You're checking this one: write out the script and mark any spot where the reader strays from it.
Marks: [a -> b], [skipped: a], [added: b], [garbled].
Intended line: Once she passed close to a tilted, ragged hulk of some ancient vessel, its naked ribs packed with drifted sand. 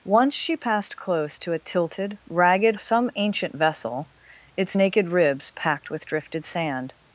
Once she passed close to a tilted, ragged [skipped: hulk of] some ancient vessel, its naked ribs packed with drifted sand.